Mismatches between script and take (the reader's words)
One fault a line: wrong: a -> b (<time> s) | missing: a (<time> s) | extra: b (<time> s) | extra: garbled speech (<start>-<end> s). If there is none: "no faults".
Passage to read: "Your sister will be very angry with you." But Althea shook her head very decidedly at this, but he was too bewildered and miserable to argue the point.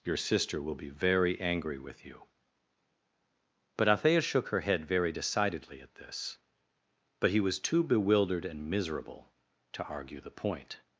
no faults